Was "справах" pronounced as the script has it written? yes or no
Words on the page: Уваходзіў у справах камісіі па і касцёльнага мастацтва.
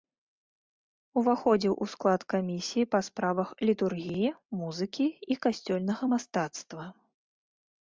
no